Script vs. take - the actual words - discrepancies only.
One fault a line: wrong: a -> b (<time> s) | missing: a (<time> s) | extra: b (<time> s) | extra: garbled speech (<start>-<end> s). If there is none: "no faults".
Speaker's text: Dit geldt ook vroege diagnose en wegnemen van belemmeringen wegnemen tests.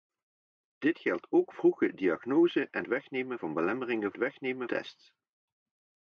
no faults